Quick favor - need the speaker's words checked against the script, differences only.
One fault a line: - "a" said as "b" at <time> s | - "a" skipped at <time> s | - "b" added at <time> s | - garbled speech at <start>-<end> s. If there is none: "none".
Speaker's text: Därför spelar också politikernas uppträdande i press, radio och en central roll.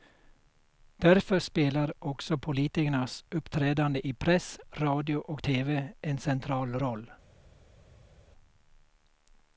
- "tv" added at 5.4 s